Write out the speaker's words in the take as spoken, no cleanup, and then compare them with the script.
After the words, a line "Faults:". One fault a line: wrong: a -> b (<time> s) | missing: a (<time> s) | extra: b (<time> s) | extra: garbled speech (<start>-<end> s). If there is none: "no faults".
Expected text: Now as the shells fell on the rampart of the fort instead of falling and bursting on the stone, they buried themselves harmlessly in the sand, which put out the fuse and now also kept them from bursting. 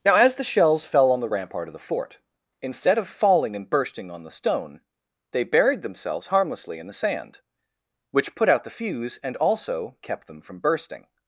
Now as the shells fell on the rampart of the fort instead of falling and bursting on the stone, they buried themselves harmlessly in the sand, which put out the fuse and also kept them from bursting.
Faults:
missing: now (9.4 s)